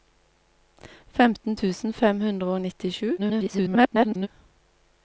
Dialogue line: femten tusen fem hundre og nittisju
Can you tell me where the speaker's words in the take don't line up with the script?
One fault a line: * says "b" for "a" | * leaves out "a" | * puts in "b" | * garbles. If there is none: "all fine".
* garbles